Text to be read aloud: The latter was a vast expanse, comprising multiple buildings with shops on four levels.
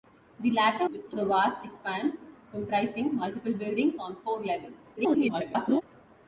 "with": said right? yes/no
no